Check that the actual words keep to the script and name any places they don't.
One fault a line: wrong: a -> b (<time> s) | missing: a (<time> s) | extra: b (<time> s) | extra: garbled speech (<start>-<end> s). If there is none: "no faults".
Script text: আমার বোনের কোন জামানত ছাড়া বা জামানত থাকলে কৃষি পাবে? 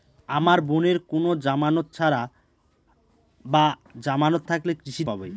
no faults